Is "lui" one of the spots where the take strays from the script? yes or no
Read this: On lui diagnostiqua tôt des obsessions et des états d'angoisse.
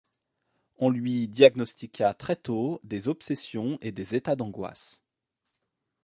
no